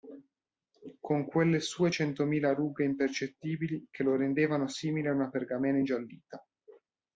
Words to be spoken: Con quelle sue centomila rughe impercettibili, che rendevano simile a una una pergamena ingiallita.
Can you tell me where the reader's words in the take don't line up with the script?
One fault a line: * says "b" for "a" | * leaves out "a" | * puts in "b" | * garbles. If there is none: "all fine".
* puts in "lo"
* leaves out "una"